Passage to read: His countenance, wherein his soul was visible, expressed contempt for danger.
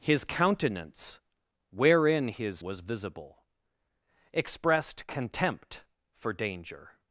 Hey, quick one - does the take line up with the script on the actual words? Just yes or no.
no